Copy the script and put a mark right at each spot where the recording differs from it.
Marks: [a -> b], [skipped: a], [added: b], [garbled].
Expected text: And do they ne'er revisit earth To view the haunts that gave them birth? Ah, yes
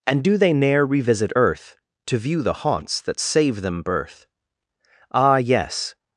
And do they ne'er revisit earth To view the haunts that [gave -> save] them birth? Ah, yes